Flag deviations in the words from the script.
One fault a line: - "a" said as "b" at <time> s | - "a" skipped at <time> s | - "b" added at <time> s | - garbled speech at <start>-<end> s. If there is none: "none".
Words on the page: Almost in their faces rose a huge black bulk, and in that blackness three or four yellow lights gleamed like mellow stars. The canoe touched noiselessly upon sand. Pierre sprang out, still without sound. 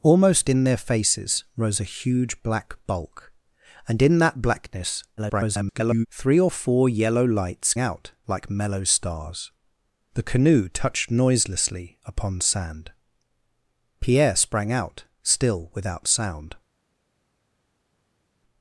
- garbled speech at 5.2-6.1 s
- "gleamed" said as "out" at 7.8 s